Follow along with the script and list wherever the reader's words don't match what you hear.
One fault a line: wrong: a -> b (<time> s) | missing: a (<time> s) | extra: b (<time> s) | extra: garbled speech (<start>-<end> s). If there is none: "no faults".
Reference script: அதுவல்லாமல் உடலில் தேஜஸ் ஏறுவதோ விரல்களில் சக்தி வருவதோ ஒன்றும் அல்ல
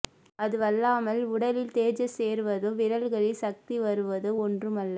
no faults